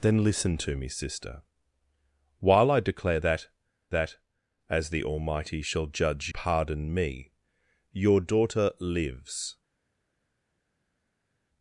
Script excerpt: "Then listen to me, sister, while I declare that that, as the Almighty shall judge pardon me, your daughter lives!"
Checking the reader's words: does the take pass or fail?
pass